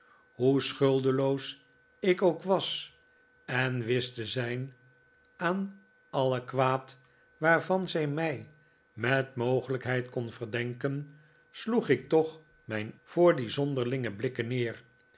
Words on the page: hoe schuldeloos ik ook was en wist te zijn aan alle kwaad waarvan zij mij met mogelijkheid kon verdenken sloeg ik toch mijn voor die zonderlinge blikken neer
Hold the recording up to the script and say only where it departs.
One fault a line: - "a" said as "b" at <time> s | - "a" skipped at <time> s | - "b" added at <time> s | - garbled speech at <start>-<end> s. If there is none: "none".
none